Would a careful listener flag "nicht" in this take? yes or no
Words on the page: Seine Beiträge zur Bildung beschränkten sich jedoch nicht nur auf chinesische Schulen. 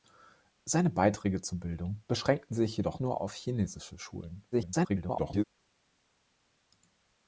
yes